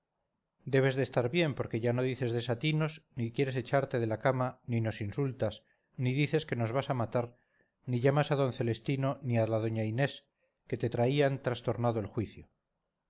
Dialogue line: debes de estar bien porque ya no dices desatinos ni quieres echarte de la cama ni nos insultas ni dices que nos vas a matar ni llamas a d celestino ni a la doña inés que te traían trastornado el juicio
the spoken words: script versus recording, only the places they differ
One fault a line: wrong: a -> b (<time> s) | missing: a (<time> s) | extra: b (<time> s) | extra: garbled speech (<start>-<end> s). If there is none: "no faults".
no faults